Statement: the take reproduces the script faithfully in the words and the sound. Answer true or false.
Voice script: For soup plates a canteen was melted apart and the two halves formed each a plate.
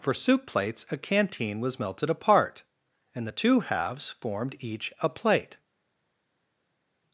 true